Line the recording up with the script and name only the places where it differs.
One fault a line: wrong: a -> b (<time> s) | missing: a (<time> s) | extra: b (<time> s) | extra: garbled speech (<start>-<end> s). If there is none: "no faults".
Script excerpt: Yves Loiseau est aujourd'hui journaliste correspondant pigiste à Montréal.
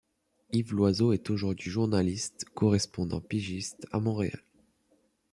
no faults